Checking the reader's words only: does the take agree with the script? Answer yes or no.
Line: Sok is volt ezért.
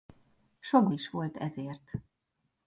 yes